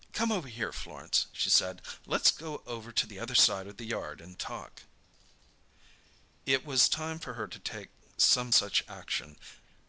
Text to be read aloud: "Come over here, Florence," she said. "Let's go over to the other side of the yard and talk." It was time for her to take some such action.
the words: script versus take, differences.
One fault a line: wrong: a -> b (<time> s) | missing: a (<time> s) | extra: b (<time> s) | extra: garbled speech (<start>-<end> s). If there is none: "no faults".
no faults